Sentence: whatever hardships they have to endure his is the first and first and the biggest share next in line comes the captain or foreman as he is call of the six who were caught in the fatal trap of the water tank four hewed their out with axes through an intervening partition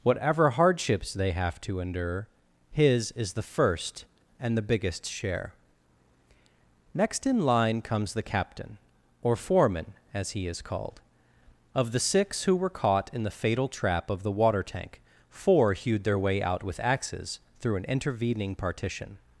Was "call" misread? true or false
true